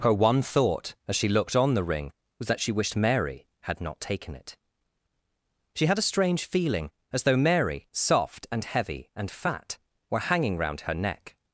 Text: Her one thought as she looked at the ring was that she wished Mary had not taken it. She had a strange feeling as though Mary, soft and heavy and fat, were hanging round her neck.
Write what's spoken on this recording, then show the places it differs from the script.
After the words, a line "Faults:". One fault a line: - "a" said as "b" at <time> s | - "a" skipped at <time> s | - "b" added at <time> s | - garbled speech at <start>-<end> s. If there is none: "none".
Her one thought as she looked on the ring was that she wished Mary had not taken it. She had a strange feeling as though Mary, soft and heavy and fat, were hanging round her neck.
Faults:
- "at" said as "on" at 1.6 s